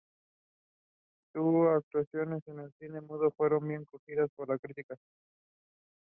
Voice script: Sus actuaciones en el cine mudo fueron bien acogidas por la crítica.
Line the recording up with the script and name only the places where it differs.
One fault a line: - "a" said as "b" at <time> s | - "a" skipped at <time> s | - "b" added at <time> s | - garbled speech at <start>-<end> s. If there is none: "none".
none